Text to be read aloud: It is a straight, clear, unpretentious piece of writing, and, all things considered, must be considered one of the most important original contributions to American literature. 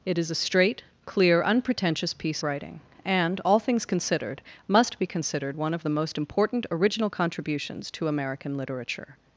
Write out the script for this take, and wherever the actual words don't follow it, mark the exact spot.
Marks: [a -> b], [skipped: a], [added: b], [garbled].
It is a straight, clear, unpretentious piece [skipped: of] writing, and, all things considered, must be considered one of the most important original contributions to American literature.